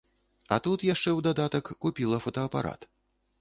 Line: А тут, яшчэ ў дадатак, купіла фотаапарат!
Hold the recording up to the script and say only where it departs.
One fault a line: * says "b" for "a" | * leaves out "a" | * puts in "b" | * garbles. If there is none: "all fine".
all fine